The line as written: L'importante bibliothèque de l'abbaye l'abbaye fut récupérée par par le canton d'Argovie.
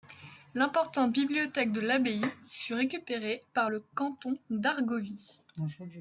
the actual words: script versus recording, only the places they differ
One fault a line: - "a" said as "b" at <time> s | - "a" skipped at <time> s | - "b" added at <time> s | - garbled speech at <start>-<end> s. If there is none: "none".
- "l'abbaye" skipped at 2.2 s
- "par" skipped at 3.7 s